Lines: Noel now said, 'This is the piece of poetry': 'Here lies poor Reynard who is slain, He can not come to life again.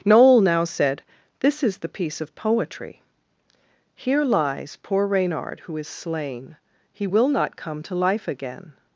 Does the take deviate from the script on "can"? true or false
true